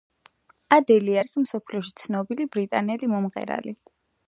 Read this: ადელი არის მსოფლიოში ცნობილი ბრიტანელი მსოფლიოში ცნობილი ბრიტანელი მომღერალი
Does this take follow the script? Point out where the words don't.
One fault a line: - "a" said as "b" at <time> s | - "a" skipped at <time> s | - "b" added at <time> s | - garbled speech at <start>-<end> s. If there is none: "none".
- "მსოფლიოში ცნობილი ბრიტანელი" skipped at 3.2 s